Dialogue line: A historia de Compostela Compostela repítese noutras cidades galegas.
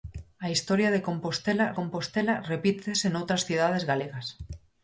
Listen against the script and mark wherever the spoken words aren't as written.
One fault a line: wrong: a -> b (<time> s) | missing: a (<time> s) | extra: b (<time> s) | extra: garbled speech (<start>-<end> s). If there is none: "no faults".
no faults